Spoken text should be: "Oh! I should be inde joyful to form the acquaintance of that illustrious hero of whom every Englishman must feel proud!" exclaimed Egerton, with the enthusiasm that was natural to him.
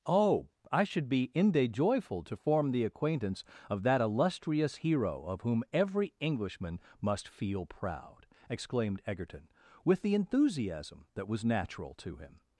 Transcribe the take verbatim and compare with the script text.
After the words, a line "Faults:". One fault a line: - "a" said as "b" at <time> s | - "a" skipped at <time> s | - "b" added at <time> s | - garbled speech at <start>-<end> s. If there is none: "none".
"Oh! I should be inde joyful to form the acquaintance of that illustrious hero of whom every Englishman must feel proud!" exclaimed Egerton, with the enthusiasm that was natural to him.
Faults:
none